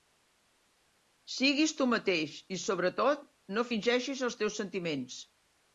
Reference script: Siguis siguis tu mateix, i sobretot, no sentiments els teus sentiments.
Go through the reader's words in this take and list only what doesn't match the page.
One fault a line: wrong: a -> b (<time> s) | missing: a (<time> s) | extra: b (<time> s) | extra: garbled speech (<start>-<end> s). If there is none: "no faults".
missing: siguis (1.8 s)
wrong: sentiments -> fingeixis (3.7 s)